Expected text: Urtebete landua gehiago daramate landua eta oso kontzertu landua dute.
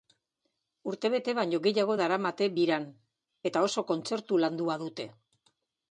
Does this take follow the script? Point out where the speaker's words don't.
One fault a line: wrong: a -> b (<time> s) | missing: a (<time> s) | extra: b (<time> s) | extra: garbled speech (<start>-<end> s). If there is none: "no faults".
wrong: landua -> baino (1.4 s)
wrong: landua -> biran (2.6 s)